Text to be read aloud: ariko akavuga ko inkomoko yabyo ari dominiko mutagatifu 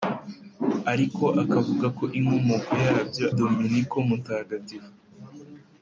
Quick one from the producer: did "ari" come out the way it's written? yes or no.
no